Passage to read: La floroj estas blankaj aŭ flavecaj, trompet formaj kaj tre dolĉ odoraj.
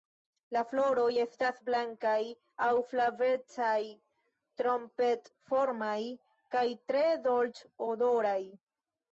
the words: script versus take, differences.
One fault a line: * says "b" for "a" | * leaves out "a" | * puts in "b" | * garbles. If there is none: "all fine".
all fine